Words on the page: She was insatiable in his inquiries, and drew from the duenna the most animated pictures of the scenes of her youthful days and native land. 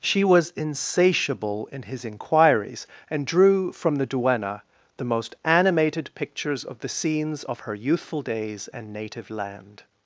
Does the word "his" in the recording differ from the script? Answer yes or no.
no